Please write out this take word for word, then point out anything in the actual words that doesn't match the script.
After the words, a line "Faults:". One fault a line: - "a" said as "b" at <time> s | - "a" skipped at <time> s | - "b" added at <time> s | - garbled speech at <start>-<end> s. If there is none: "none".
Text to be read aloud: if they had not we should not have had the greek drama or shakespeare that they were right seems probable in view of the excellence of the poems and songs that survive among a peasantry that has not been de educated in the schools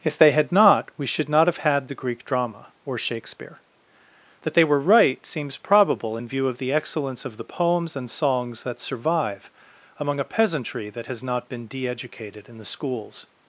if they had not we should not have had the greek drama or shakespeare that they were right seems probable in view of the excellence of the poems and songs that survive among a peasantry that has not been de educated in the schools
Faults:
none